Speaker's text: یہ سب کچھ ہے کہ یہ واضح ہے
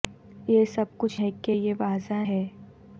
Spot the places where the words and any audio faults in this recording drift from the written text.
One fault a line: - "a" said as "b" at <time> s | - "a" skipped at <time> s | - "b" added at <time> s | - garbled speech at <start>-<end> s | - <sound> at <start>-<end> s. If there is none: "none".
none